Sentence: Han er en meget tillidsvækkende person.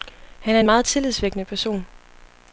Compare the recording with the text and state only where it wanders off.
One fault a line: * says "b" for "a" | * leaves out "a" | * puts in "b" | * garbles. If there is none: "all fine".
all fine